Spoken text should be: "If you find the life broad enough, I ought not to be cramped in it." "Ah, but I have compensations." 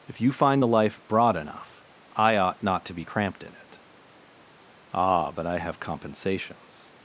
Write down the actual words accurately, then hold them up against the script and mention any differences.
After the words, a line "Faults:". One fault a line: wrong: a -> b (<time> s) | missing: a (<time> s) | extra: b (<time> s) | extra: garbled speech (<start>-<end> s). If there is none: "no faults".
"If you find the life broad enough, I ought not to be cramped in it." "Ah, but I have compensations."
Faults:
no faults